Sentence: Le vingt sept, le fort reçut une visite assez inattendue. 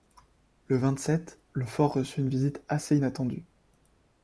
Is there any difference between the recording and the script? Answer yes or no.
no